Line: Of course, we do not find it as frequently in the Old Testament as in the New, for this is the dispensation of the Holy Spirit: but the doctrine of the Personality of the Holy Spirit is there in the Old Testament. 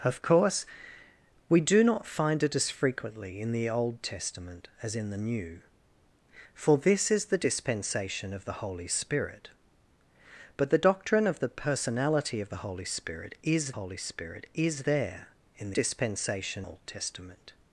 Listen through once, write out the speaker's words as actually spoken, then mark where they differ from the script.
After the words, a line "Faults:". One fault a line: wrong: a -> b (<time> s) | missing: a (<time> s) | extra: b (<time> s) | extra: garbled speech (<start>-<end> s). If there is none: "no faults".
Of course, we do not find it as frequently in the Old Testament as in the New, for this is the dispensation of the Holy Spirit: but the doctrine of the Personality of the Holy Spirit is Holy Spirit is there in dispensation Old Testament.
Faults:
extra: Holy Spirit is (13.7 s)
wrong: the -> dispensation (15.7 s)